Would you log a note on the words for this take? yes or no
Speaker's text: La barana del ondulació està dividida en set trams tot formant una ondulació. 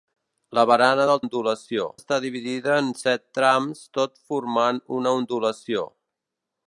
no